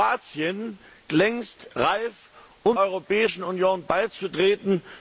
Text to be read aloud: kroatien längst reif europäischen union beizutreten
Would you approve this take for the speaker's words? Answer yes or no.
yes